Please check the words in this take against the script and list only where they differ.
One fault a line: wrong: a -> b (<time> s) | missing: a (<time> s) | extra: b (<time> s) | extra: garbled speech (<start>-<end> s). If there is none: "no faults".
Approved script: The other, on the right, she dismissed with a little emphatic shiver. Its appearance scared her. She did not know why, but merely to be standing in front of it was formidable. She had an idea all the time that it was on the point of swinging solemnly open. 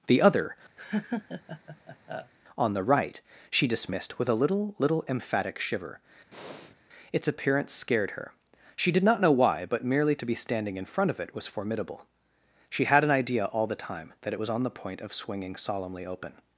extra: little (4.8 s)